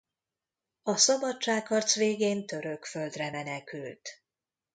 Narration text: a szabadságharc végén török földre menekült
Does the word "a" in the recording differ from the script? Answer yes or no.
no